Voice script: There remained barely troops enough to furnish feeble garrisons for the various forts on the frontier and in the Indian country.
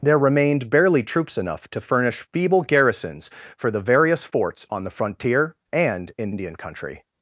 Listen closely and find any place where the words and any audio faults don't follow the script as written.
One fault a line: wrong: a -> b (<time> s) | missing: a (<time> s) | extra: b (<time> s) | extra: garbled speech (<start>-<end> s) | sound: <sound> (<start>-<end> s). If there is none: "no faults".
missing: the (6.3 s)